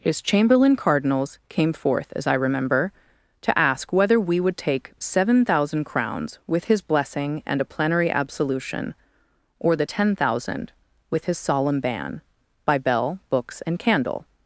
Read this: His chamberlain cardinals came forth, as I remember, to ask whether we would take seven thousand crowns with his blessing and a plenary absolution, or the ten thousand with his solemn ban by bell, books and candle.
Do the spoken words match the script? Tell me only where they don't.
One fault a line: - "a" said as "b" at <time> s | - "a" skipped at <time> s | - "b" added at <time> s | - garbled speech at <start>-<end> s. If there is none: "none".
none